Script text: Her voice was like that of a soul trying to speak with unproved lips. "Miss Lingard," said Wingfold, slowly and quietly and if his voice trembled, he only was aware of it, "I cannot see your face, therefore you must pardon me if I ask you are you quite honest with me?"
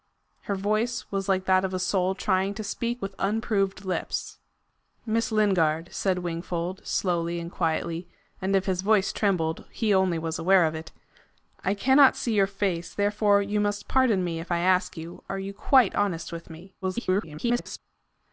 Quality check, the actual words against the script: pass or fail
fail